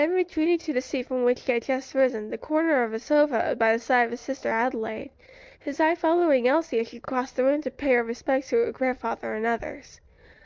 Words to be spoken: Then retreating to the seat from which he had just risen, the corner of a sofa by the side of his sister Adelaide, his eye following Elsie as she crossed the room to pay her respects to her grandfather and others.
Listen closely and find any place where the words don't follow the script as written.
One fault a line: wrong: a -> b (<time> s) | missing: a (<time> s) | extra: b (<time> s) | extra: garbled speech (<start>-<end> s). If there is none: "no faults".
no faults